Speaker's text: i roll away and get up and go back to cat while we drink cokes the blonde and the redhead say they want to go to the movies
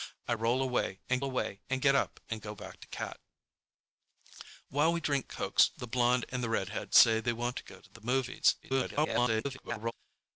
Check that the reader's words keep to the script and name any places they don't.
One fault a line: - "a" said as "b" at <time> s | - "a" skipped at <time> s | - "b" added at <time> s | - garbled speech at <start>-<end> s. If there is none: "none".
- "away and" added at 1.2 s
- garbled speech at 8.6-9.9 s